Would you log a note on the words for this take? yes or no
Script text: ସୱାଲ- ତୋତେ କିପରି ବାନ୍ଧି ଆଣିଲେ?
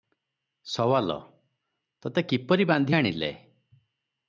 no